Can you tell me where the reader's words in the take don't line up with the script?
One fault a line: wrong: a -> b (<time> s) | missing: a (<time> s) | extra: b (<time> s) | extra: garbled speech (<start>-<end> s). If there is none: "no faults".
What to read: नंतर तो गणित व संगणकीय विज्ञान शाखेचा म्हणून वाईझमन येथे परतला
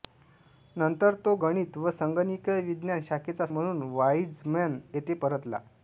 no faults